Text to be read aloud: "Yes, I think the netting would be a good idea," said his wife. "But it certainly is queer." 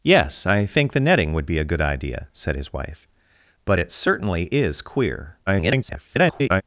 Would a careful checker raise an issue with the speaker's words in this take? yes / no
yes